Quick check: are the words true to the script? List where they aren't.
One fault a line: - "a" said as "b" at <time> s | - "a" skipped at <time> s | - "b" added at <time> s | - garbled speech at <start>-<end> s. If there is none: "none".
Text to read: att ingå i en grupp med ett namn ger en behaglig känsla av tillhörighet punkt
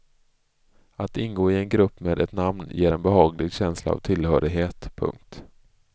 none